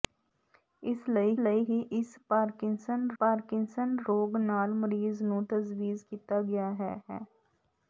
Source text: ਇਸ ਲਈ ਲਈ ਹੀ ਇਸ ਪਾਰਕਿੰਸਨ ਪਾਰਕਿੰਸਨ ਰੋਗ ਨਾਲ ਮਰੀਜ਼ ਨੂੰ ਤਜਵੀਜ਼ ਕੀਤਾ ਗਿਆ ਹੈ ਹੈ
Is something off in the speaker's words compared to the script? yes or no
no